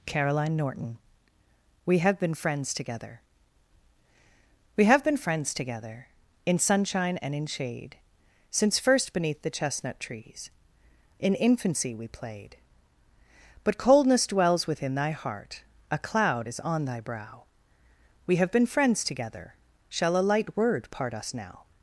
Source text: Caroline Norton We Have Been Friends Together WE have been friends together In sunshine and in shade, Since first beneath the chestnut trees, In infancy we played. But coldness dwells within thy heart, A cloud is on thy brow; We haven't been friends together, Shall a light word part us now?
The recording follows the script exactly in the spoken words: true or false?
false